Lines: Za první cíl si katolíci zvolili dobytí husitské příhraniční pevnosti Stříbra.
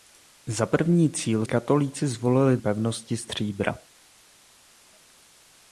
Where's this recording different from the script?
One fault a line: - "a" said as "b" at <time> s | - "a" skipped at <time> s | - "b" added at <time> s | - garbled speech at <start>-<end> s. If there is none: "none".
- "si" skipped at 1.4 s
- "dobytí husitské příhraniční" skipped at 2.6 s